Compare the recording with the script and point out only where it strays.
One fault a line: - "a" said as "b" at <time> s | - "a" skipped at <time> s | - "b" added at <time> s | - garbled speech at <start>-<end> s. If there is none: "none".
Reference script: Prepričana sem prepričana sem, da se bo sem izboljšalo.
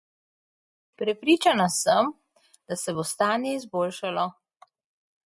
- "prepričana sem" skipped at 2.1 s
- "sem" said as "stanje" at 3.0 s